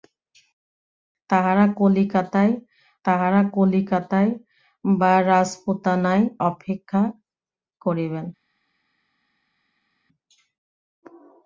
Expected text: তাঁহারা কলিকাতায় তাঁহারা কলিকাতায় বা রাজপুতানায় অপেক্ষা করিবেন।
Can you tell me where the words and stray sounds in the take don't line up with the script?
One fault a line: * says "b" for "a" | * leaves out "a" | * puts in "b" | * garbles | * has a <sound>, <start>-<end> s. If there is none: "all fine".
all fine